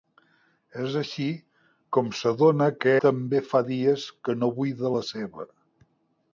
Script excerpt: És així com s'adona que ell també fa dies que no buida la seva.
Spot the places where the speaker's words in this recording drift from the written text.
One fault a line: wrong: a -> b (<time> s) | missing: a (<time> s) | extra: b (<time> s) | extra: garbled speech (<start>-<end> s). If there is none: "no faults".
missing: ell (3.0 s)